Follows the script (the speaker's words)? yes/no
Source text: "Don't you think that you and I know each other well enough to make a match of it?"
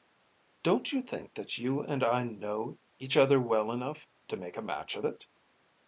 yes